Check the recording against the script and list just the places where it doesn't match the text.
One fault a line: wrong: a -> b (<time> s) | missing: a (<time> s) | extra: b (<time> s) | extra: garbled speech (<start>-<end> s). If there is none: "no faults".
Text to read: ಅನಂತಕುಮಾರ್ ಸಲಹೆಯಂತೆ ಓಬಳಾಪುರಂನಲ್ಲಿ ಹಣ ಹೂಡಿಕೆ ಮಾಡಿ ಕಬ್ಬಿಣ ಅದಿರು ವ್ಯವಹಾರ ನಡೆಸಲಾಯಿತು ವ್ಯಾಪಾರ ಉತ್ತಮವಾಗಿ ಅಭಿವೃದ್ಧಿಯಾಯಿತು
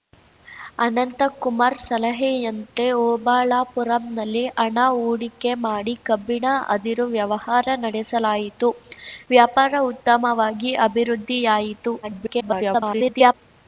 extra: garbled speech (12.0-13.3 s)